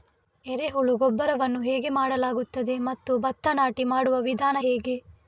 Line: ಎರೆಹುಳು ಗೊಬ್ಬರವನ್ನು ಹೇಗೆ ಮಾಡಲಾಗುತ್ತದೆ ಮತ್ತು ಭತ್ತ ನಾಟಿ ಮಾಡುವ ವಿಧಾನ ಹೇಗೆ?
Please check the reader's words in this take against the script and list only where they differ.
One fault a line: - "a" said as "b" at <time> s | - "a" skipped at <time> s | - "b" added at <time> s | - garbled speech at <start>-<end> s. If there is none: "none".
none